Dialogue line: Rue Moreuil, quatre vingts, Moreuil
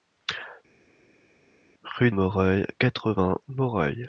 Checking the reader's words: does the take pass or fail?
pass